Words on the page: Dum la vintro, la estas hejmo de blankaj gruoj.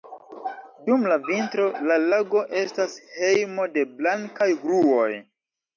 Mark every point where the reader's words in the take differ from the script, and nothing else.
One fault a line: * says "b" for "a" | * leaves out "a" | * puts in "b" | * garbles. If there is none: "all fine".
* puts in "lago"